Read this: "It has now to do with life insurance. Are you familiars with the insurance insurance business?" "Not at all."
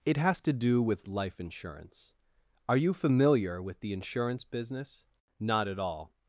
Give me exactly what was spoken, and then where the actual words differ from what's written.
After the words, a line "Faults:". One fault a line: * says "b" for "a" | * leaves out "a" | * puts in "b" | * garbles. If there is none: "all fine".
"It has to do with life insurance. Are you familiar with the insurance business?" "Not at all."
Faults:
* leaves out "now"
* says "familiar" for "familiars"
* leaves out "insurance"